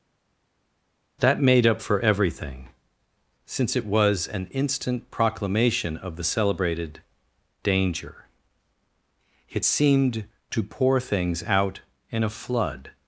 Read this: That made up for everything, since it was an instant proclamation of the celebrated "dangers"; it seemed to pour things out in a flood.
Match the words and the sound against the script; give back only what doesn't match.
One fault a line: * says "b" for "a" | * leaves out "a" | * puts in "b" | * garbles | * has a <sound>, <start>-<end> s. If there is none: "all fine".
* says "danger" for "dangers"